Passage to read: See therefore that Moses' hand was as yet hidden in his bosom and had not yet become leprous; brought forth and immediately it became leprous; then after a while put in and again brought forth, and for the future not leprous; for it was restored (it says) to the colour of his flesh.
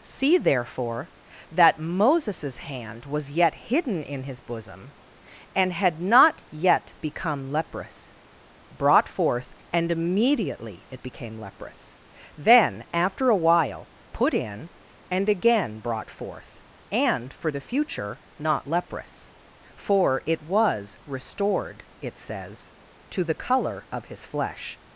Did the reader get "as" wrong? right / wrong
wrong